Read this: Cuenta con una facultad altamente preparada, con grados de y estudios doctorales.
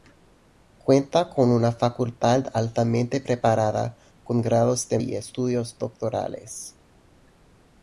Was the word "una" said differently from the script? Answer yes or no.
no